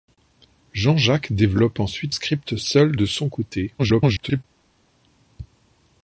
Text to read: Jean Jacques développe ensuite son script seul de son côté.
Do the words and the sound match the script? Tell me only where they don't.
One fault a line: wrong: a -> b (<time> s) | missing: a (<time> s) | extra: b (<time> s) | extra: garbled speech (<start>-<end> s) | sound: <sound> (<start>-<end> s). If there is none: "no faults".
missing: son (2.1 s)
extra: garbled speech (3.8-4.4 s)